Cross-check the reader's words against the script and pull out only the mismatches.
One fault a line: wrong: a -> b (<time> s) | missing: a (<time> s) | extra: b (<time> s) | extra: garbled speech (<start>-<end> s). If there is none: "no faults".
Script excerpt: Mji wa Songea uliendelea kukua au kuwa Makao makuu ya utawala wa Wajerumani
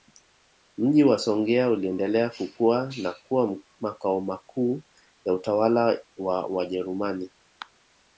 wrong: au -> na (3.0 s)